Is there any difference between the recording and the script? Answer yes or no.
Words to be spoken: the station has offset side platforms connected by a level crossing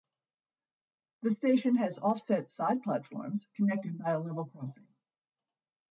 no